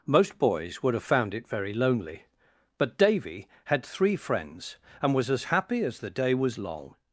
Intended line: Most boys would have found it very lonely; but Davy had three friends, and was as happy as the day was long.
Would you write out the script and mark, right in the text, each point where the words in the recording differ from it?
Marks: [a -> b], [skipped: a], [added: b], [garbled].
Most boys would have found it very lonely; but Davy had three friends, and was as happy as the day was long.